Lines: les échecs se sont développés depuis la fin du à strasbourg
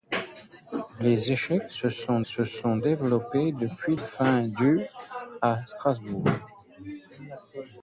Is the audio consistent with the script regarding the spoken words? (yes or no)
no